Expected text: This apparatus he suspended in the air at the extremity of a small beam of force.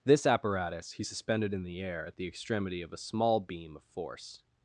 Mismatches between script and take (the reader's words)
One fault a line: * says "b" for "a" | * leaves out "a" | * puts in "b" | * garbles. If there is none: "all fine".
all fine